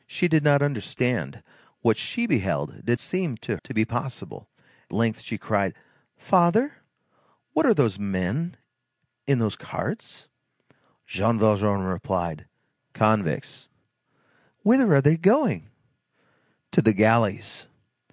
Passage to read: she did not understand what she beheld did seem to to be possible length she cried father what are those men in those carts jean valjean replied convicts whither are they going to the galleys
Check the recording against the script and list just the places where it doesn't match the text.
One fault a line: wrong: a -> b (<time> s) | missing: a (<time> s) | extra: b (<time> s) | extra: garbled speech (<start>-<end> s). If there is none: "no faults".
no faults